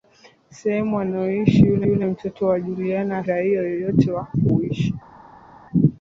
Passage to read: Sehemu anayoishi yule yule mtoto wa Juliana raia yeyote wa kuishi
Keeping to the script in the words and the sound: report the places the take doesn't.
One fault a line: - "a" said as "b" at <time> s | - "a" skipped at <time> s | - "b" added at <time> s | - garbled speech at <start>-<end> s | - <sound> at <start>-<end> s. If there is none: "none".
none